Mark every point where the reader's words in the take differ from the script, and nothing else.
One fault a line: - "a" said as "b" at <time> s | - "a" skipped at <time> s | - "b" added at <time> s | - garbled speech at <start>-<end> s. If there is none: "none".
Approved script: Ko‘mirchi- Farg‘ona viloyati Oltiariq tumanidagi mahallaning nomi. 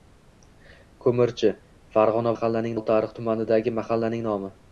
- "viloyati" said as "mahallaning" at 2.3 s